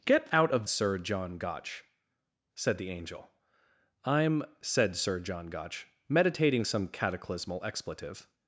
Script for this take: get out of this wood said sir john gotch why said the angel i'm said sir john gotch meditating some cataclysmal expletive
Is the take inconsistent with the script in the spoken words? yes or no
yes